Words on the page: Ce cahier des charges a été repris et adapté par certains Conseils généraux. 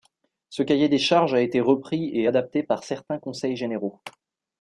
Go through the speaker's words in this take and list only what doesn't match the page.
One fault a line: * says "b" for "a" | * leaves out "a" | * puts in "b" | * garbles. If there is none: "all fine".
all fine